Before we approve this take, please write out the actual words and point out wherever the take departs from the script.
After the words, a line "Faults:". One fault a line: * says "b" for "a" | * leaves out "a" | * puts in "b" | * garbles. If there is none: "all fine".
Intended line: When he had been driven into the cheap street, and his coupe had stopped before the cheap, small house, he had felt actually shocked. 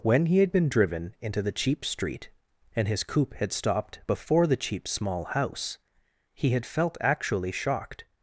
When he had been driven into the cheap street, and his coupe had stopped before the cheap, small house, he had felt actually shocked.
Faults:
all fine